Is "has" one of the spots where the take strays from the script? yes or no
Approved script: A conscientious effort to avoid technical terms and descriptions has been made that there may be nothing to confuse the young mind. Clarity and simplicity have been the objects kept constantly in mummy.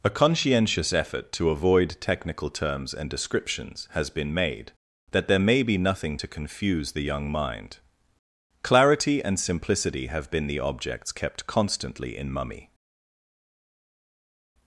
no